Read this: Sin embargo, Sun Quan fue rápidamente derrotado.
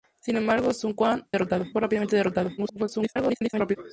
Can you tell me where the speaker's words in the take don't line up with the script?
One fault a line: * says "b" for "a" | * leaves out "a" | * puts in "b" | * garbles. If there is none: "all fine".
* says "derrotado" for "fue"
* garbles